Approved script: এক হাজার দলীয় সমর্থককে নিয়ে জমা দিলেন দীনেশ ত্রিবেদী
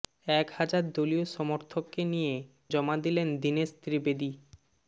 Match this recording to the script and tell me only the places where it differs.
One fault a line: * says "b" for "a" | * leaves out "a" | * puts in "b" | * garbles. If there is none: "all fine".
all fine